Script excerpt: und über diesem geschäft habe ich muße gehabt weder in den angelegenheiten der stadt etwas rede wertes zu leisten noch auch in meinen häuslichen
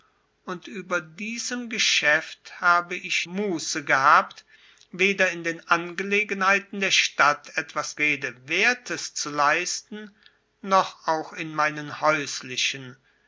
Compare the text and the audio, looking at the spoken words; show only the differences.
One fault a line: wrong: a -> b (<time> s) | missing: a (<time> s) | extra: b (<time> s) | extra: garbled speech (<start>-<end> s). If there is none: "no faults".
no faults